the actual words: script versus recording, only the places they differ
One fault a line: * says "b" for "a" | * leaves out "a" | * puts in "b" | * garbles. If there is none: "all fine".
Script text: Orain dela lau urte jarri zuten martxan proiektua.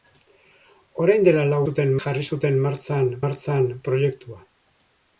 * says "zuten" for "urte"
* puts in "martxan"